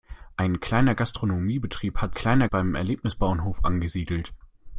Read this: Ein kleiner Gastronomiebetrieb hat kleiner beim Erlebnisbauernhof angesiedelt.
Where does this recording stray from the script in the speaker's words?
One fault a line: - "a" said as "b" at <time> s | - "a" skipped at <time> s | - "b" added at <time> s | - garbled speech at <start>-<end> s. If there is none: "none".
none